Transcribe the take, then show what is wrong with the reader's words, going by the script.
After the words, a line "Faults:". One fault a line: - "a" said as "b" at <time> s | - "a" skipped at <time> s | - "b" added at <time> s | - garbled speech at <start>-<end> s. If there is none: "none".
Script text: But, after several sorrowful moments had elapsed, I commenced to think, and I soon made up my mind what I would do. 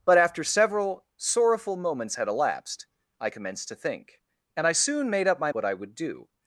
But, after several sorrowful moments had elapsed, I commenced to think, and I soon made up my what I would do.
Faults:
- "mind" skipped at 5.5 s